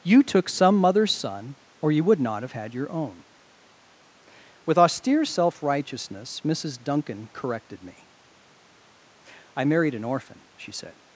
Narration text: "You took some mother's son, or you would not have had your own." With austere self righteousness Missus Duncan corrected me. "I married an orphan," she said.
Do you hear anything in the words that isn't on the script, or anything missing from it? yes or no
no